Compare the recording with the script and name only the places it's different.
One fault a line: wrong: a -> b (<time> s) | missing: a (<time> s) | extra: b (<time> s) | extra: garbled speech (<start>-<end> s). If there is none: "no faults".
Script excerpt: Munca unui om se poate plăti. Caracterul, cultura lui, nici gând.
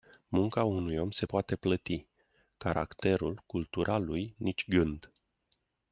no faults